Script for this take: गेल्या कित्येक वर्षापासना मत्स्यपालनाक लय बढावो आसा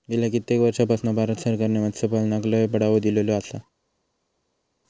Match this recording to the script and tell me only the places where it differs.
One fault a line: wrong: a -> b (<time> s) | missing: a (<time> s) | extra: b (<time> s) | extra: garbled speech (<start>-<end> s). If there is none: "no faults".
extra: भारत सरकारने (1.1 s)
extra: दिलेलो (3.0 s)